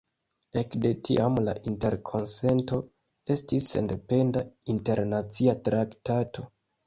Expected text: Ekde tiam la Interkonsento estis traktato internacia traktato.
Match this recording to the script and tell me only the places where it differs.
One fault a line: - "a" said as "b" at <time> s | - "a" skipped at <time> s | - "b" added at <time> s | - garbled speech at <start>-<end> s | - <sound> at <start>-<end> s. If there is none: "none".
- "traktato" said as "sendependa" at 3.8 s